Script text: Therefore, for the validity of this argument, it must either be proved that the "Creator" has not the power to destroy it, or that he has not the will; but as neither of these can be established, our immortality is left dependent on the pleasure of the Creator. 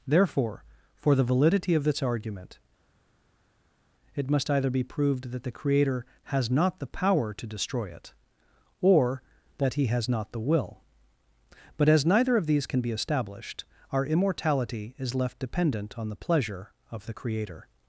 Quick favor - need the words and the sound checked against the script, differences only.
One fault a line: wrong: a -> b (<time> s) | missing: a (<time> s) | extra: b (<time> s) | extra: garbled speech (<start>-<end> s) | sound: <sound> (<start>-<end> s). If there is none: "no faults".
no faults